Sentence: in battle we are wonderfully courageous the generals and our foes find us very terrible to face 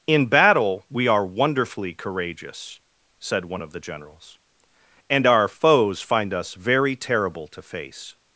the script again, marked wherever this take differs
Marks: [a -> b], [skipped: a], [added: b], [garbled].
in battle we are wonderfully courageous [added: said one of] the generals and our foes find us very terrible to face